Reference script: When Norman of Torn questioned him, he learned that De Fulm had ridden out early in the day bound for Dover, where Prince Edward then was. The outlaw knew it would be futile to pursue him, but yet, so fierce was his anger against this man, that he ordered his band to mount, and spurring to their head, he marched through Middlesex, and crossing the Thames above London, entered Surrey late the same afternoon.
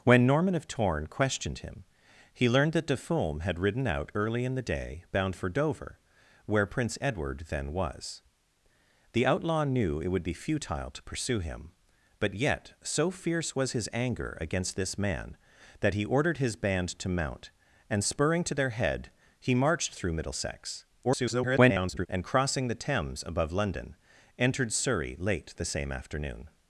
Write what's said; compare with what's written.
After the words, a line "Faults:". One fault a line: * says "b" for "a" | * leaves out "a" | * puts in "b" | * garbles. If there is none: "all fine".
When Norman of Torn questioned him, he learned that De Fulm had ridden out early in the day bound for Dover, where Prince Edward then was. The outlaw knew it would be futile to pursue him, but yet, so fierce was his anger against this man, that he ordered his band to mount, and spurring to their head, he marched through Middlesex, [garbled] and crossing the Thames above London, entered Surrey late the same afternoon.
Faults:
* garbles